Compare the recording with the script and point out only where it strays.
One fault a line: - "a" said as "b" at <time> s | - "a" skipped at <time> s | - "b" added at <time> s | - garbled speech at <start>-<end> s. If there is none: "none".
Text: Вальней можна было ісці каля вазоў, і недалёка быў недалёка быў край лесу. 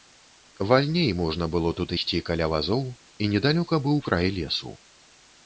- "тут" added at 1.8 s
- "недалёка быў" skipped at 4.0 s